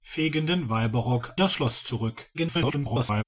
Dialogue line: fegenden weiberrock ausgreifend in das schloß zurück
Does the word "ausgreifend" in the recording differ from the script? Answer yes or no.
yes